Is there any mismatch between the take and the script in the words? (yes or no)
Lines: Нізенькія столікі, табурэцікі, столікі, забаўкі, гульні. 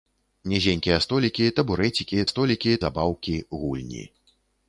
no